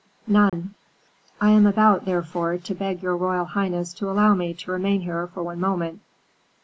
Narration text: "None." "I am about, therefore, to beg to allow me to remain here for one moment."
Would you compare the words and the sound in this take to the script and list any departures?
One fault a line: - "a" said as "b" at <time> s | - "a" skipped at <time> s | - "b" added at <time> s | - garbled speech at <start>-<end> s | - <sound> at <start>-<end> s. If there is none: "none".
- dropout at 0.5-0.5 s
- "your royal highness" added at 3.0 s